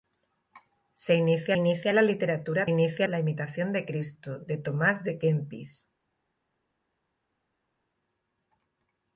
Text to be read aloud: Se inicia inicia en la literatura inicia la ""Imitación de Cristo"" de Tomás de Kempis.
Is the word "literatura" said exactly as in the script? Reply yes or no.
yes